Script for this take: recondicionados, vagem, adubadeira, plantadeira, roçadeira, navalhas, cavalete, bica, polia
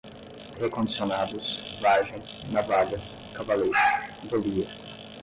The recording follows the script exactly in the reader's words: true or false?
false